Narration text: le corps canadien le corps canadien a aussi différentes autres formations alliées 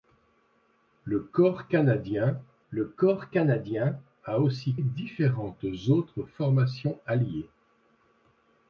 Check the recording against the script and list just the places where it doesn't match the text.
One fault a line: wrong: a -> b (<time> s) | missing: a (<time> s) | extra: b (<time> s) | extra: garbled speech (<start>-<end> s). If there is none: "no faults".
no faults